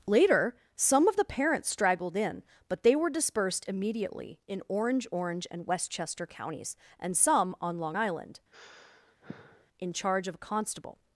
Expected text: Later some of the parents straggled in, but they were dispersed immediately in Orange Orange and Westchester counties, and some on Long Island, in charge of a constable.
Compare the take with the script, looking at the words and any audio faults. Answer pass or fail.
fail